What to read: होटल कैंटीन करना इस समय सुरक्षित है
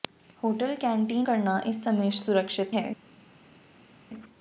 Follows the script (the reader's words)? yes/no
yes